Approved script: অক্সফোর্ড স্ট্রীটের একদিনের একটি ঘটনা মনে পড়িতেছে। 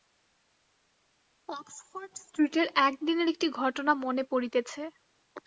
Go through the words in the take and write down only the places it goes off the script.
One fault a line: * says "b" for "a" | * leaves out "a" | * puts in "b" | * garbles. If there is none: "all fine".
all fine